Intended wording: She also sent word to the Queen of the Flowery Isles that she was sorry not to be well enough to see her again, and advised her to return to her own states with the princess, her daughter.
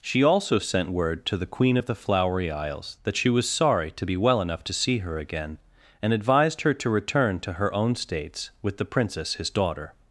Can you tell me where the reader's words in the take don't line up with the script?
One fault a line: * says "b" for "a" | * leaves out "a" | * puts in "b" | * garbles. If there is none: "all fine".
* leaves out "not"
* says "his" for "her"